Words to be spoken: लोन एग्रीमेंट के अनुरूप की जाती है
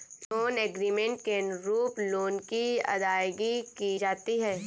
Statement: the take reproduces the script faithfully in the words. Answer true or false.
false